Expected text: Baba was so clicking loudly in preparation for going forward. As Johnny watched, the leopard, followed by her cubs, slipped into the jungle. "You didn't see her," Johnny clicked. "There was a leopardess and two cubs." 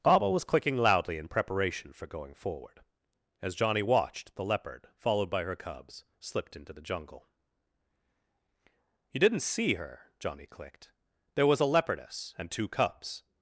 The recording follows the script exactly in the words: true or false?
false